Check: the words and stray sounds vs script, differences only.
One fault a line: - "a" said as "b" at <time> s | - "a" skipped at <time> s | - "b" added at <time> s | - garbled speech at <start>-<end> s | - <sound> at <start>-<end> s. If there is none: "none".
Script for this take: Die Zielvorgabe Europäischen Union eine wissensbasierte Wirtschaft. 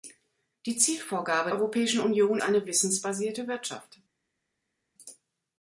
none